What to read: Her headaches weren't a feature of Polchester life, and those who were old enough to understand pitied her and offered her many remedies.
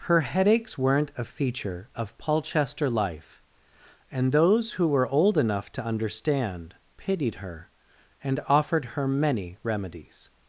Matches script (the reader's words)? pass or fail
pass